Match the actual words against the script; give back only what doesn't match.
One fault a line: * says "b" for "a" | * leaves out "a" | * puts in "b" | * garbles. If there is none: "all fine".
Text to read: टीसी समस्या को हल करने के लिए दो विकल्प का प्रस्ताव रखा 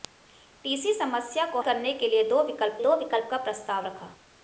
* leaves out "हल"
* puts in "दो विकल्प"